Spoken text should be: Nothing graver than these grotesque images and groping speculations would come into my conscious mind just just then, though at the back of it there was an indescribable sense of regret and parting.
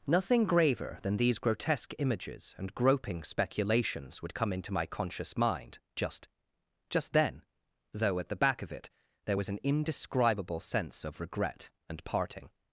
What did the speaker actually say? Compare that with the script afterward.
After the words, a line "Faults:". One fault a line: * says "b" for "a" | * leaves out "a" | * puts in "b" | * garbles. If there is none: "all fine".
Nothing graver than these grotesque images and groping speculations would come into my conscious mind just just then, though at the back of it there was an indescribable sense of regret and parting.
Faults:
all fine